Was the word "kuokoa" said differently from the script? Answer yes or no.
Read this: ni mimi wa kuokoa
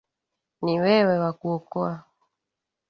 no